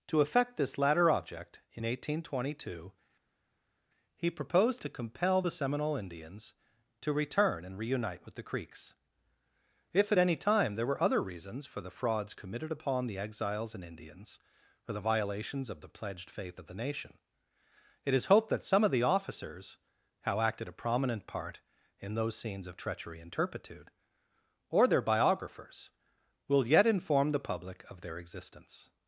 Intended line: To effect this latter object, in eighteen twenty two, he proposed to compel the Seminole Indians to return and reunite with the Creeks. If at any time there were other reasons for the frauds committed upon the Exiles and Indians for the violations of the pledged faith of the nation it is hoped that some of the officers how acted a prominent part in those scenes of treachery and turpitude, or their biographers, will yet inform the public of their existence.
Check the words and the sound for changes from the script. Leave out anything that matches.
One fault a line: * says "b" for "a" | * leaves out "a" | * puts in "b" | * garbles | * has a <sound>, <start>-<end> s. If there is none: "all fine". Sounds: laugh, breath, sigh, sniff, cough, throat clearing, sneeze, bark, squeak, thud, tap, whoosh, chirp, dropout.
all fine